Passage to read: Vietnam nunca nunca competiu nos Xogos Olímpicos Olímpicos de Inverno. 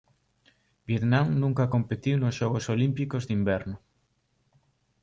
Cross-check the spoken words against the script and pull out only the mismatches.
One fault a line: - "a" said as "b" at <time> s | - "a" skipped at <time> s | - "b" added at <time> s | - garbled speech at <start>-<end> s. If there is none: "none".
- "nunca" skipped at 1.7 s
- "Olímpicos" skipped at 3.2 s